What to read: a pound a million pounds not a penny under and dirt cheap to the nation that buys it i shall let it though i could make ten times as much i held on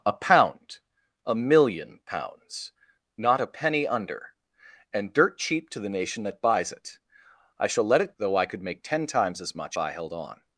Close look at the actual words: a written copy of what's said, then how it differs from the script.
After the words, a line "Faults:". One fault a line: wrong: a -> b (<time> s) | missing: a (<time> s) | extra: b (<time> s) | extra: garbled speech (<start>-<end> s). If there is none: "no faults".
a pound a million pounds not a penny under and dirt cheap to the nation that buys it i shall let it though i could make ten times as much i held on
Faults:
no faults